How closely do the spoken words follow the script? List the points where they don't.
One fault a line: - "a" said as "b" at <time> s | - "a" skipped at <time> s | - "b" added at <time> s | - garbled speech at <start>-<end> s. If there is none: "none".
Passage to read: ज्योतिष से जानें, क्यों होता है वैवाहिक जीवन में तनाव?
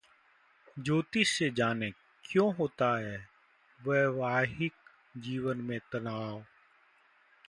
none